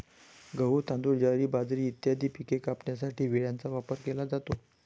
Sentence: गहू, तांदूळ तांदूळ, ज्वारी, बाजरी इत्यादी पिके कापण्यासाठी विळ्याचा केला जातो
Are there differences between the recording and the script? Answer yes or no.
yes